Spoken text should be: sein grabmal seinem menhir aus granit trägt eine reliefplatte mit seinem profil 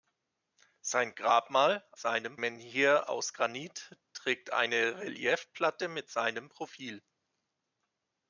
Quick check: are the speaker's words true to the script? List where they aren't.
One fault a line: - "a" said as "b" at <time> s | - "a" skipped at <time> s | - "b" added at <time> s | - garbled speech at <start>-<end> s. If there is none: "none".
none